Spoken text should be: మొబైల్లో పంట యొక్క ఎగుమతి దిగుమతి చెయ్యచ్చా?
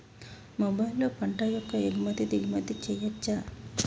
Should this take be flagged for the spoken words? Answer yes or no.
no